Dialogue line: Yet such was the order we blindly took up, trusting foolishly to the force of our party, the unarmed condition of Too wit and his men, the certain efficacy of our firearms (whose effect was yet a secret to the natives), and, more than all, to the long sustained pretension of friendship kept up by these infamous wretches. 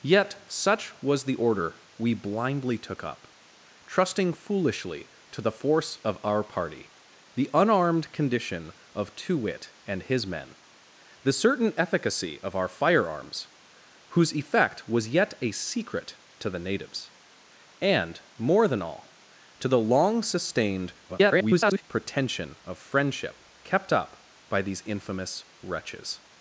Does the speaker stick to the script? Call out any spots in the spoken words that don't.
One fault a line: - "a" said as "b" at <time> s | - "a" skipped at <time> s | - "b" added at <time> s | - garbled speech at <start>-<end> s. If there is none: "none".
- garbled speech at 21.1-21.8 s